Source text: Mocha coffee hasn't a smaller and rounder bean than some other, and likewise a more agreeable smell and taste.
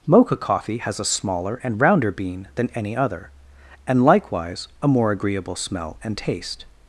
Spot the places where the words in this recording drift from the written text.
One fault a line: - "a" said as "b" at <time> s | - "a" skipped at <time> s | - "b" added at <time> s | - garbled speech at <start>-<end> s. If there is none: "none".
- "hasn't" said as "has" at 0.8 s
- "some" said as "any" at 2.7 s